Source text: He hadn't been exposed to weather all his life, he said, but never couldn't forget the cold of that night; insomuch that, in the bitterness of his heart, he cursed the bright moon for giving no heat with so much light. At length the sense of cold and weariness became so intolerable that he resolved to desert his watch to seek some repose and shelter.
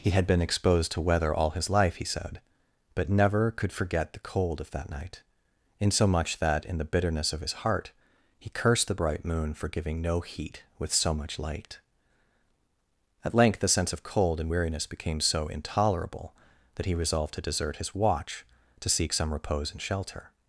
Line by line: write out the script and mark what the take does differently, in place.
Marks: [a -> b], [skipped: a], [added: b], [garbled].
He [hadn't -> had] been exposed to weather all his life, he said, but never [couldn't -> could] forget the cold of that night; insomuch that, in the bitterness of his heart, he cursed the bright moon for giving no heat with so much light. At length the sense of cold and weariness became so intolerable that he resolved to desert his watch to seek some repose and shelter.